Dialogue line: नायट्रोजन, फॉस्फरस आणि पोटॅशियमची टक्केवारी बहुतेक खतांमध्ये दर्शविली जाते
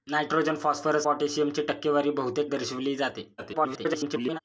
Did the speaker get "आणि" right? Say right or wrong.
wrong